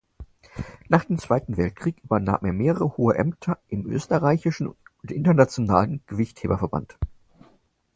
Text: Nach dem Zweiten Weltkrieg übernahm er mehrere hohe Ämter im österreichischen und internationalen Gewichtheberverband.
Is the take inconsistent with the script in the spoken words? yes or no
no